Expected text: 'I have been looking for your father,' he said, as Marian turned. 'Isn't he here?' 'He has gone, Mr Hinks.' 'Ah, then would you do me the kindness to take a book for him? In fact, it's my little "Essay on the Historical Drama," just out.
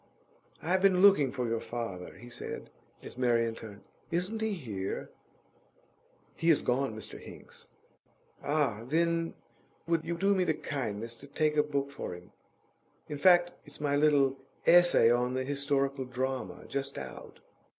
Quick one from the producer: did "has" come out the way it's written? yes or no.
yes